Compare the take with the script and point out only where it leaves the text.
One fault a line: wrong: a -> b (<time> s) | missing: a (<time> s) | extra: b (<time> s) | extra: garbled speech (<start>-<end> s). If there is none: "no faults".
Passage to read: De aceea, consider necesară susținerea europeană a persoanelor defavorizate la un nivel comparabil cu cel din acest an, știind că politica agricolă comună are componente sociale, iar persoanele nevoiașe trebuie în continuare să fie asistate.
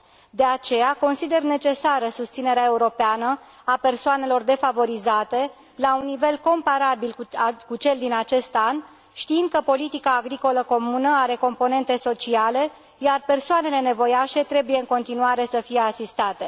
no faults